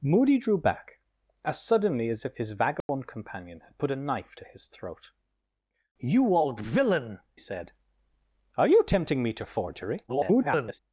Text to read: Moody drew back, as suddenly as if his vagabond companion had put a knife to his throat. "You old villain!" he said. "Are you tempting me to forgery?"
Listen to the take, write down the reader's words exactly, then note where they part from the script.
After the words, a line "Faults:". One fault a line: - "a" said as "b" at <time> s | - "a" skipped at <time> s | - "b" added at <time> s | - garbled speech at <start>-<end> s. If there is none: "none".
Moody drew back, as suddenly as if his vagabond companion had put a knife to his throat. "You old villain!" said. "Are you tempting me to forgery?" [garbled]
Faults:
- "he" skipped at 7.2 s
- garbled speech at 10.1-10.8 s